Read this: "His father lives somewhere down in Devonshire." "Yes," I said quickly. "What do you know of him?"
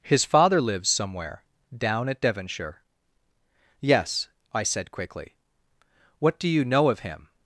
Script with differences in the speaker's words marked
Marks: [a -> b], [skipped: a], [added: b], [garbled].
"His father lives somewhere down [in -> at] Devonshire." "Yes," I said quickly. "What do you know of him?"